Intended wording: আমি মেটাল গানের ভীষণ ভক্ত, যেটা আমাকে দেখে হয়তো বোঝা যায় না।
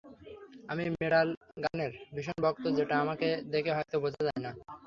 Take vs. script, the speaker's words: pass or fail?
pass